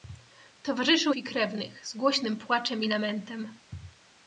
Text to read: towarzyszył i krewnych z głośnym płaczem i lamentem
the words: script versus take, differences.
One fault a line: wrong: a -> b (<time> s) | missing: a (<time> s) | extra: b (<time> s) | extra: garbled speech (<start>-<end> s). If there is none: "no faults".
no faults